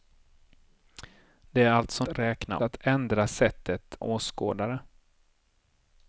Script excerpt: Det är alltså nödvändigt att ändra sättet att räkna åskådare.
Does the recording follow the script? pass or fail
fail